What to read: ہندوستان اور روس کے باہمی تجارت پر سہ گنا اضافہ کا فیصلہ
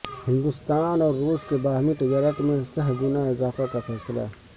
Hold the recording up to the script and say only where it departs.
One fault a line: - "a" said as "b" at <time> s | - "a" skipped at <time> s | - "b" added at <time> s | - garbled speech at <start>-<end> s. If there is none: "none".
- "پر" said as "میں" at 2.4 s